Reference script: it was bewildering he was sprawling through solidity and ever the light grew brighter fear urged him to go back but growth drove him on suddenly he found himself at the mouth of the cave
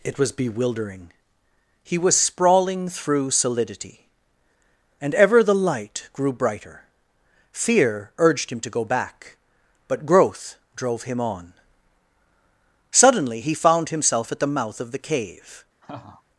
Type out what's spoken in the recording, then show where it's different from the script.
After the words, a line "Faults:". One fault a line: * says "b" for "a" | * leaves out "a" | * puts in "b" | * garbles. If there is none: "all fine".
it was bewildering he was sprawling through solidity and ever the light grew brighter fear urged him to go back but growth drove him on suddenly he found himself at the mouth of the cave
Faults:
all fine